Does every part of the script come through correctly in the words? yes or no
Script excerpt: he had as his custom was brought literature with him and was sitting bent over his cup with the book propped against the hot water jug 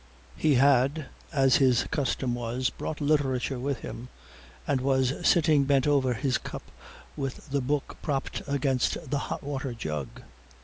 yes